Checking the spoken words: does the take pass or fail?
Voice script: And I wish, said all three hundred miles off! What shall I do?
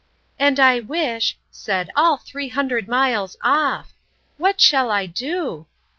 pass